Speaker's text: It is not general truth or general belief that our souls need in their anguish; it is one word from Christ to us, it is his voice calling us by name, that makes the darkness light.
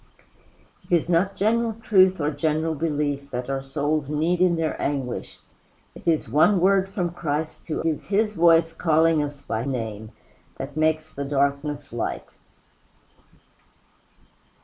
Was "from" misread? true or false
false